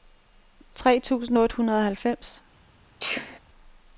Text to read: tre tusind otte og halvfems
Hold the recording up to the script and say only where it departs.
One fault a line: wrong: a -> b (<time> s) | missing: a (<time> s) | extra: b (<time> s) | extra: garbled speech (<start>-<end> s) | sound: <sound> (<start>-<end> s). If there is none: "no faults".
extra: hundrede (1.6 s)
sound: sneeze (3.0-3.4 s)